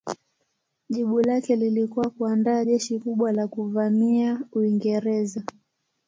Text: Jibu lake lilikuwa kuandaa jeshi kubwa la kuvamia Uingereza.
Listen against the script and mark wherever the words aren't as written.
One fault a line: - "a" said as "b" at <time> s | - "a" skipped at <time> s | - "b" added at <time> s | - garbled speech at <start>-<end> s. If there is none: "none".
none